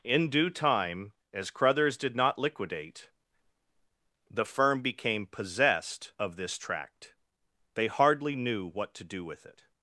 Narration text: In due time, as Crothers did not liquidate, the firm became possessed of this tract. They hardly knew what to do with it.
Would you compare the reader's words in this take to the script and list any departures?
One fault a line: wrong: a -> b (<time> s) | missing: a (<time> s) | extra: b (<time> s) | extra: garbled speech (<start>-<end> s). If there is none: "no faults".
no faults